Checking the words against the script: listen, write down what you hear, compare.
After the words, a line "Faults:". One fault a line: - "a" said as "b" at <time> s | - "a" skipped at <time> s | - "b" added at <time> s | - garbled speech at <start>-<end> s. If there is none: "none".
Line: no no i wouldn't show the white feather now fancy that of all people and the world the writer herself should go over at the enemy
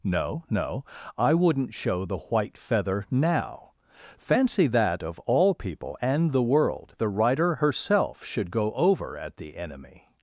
no no i wouldn't show the white feather now fancy that of all people and the world the writer herself should go over at the enemy
Faults:
none